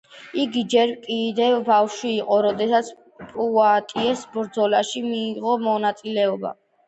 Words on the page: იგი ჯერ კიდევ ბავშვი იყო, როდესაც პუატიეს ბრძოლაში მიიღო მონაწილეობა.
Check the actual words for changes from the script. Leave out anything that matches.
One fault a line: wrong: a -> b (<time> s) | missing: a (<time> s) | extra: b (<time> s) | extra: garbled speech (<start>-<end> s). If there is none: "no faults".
no faults